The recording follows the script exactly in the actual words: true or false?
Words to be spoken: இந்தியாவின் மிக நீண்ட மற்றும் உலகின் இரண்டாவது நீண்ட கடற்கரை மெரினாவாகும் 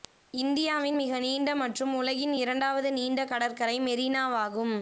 true